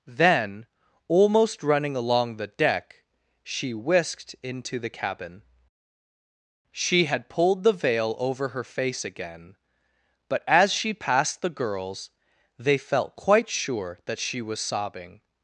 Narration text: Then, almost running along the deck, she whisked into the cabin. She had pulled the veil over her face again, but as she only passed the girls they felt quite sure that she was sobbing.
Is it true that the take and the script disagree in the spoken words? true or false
true